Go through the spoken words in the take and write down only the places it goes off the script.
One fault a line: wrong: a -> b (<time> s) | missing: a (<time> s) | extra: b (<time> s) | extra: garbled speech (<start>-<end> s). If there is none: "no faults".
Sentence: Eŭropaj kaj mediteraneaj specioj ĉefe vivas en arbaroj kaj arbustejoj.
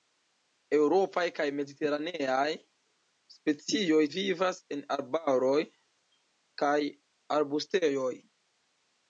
missing: ĉefe (4.0 s)